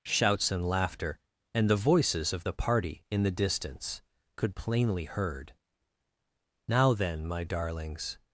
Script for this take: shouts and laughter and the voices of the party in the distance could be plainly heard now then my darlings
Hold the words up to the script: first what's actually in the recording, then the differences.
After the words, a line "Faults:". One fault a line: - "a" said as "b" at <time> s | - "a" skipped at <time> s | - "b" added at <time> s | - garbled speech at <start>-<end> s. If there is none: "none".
shouts and laughter and the voices of the party in the distance could plainly heard now then my darlings
Faults:
- "be" skipped at 4.5 s